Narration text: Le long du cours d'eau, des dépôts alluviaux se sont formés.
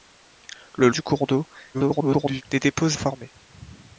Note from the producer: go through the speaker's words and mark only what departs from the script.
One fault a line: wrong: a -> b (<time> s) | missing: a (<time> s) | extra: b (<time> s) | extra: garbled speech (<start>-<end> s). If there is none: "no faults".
missing: long (0.9 s)
extra: garbled speech (1.7-2.4 s)
missing: alluviaux se sont (3.0 s)